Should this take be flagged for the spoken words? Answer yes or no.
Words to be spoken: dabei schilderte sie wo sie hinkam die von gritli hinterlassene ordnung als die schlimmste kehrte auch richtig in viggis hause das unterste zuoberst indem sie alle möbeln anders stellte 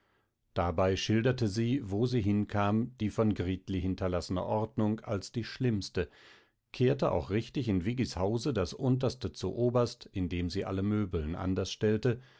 no